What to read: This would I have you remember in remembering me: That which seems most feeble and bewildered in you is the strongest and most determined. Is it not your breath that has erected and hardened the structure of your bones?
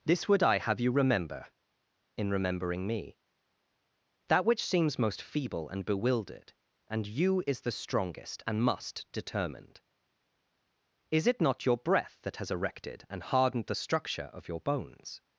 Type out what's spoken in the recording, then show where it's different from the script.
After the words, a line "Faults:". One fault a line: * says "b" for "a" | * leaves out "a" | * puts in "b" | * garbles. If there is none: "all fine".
This would I have you remember in remembering me: That which seems most feeble and bewildered and you is the strongest and must determined. Is it not your breath that has erected and hardened the structure of your bones?
Faults:
* says "and" for "in"
* says "must" for "most"